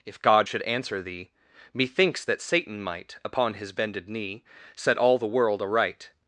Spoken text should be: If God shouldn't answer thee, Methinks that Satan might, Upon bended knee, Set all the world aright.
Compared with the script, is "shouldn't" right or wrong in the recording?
wrong